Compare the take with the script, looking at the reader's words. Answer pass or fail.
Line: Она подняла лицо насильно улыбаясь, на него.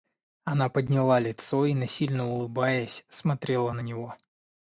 fail